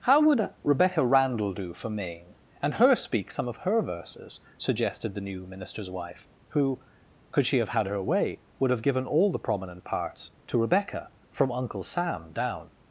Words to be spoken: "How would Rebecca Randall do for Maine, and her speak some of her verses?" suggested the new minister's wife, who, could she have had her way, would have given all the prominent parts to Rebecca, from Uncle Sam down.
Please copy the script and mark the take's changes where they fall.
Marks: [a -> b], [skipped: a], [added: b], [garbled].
"How would Rebecca Randall do for Maine, and her speak some of her verses?" suggested the new minister's wife, who, could she have had her way, would have given all the prominent parts to Rebecca, from Uncle Sam down.